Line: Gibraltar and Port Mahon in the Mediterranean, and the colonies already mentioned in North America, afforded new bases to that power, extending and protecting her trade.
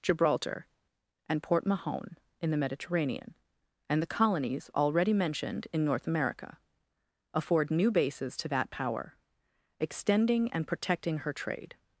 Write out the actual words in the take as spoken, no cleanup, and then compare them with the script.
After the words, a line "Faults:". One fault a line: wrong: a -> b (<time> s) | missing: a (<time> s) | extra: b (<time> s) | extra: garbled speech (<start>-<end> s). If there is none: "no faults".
Gibraltar and Port Mahon in the Mediterranean, and the colonies already mentioned in North America, afford new bases to that power, extending and protecting her trade.
Faults:
wrong: afforded -> afford (7.3 s)